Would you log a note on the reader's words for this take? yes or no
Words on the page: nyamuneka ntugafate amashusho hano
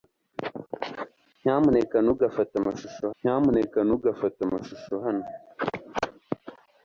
yes